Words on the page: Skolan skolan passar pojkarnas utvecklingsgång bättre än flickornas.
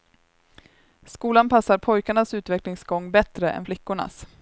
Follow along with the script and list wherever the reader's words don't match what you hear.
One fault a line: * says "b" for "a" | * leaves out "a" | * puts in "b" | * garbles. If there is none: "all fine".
* leaves out "skolan"